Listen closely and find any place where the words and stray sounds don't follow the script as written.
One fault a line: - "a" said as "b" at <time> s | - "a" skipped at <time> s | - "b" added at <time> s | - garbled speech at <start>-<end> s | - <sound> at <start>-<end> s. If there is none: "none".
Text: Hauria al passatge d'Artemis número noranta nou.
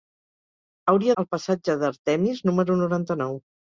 none